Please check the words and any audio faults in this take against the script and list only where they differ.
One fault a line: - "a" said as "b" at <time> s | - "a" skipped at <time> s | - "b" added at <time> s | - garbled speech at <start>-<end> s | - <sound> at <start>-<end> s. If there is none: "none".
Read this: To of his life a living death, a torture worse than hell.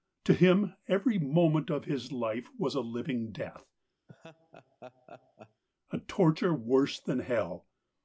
- "him every moment" added at 0.3 s
- "was" added at 2.6 s
- laugh at 4.1-5.6 s